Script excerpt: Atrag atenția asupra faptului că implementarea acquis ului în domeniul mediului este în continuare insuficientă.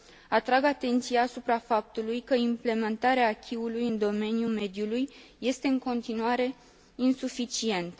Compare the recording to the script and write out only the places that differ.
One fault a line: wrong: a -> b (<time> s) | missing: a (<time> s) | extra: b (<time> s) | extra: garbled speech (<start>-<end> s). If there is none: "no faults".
no faults